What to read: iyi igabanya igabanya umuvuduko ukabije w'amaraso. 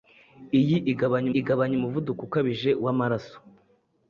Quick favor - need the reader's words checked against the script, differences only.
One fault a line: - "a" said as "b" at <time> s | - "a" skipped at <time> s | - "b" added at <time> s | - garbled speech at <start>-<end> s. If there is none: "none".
none